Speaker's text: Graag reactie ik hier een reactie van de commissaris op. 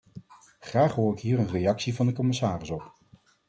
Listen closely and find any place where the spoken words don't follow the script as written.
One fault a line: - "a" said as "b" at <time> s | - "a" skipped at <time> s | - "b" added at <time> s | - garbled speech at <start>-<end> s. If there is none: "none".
- "reactie" said as "hoor" at 0.9 s